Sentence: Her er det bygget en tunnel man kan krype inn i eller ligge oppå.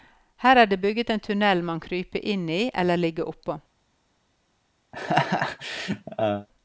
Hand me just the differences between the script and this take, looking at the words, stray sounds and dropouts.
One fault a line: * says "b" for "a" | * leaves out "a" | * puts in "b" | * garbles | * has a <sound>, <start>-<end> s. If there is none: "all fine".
* leaves out "kan"
* has a laugh, 4.9-6.5 s